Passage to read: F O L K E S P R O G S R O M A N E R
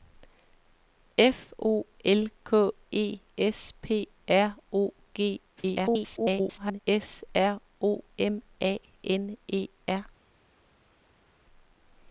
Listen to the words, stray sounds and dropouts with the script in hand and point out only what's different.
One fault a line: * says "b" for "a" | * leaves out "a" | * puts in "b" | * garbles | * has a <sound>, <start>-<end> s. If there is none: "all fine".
* garbles